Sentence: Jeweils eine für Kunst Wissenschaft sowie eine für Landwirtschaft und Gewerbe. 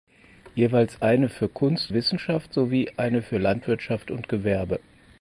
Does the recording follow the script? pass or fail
pass